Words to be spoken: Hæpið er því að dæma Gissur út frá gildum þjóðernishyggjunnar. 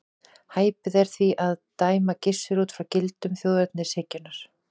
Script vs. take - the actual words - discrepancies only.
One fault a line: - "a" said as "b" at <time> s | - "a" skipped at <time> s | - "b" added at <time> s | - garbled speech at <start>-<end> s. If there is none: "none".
none